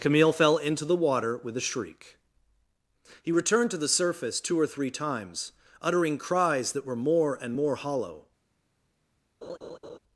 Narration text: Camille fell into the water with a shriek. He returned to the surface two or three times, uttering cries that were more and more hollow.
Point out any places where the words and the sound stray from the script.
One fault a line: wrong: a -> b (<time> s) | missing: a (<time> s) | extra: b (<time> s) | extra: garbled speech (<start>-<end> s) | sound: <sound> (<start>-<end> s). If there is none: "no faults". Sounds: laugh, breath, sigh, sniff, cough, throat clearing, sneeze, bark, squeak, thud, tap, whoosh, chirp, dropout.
sound: laugh (9.4-10.0 s)